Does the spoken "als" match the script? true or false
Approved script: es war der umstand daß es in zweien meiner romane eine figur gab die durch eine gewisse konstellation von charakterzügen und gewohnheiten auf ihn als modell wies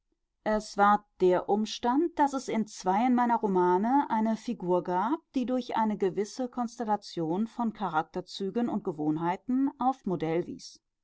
false